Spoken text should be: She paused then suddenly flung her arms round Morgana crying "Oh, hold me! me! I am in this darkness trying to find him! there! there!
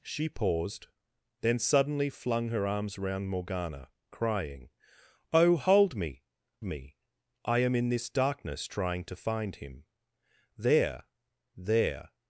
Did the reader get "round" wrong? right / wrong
right